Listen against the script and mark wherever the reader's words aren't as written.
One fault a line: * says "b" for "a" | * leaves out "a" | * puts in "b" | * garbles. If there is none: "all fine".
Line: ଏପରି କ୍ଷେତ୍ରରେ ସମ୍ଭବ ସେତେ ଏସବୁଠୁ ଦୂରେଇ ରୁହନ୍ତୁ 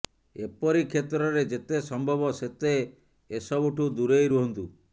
* puts in "ଯେତେ"